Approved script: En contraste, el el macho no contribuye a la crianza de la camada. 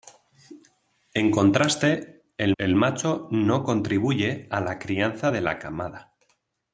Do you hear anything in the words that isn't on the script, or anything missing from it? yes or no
no